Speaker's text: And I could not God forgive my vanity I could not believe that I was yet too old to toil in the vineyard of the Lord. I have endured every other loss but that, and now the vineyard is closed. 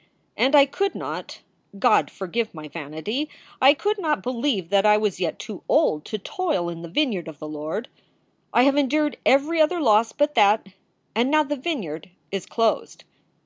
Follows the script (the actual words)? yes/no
yes